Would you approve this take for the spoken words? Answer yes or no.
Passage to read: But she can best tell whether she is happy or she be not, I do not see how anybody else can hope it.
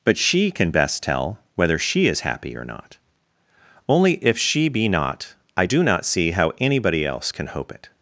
no